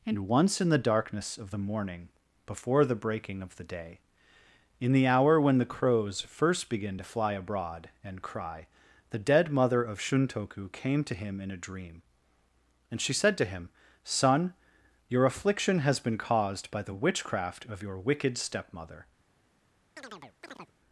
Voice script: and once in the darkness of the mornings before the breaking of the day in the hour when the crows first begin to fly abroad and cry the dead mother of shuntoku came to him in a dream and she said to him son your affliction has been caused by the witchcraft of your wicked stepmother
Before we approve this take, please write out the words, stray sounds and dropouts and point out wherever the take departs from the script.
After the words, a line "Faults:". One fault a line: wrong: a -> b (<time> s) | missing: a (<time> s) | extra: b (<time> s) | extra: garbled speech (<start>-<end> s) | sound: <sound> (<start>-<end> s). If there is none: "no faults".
and once in the darkness of the morning before the breaking of the day in the hour when the crows first begin to fly abroad and cry the dead mother of shuntoku came to him in a dream and she said to him son your affliction has been caused by the witchcraft of your wicked stepmother
Faults:
wrong: mornings -> morning (1.6 s)
sound: chirp (20.0-20.7 s)